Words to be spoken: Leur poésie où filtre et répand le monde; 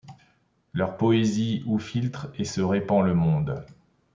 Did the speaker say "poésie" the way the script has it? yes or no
yes